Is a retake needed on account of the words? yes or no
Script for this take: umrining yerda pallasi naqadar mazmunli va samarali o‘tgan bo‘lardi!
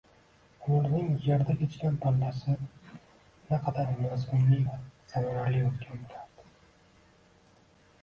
yes